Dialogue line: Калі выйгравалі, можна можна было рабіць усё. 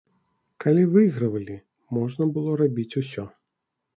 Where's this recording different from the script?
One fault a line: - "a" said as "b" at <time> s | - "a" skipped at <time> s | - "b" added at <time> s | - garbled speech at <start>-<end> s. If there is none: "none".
- "можна" skipped at 2.3 s